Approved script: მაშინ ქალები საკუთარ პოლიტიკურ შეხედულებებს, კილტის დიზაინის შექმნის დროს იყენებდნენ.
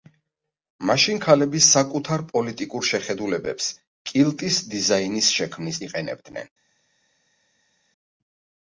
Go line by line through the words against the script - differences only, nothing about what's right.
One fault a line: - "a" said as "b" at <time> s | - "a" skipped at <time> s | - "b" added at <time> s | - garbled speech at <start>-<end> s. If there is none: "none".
- "დროს" skipped at 5.8 s